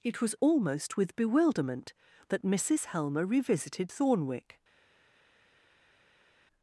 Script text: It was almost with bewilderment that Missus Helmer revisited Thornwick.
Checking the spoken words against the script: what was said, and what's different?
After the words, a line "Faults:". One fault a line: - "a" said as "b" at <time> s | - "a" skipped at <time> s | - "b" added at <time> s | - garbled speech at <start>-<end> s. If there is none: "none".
It was almost with bewilderment that Missus Helmer revisited Thornwick.
Faults:
none